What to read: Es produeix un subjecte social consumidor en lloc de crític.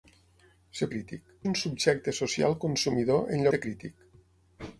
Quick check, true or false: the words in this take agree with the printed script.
false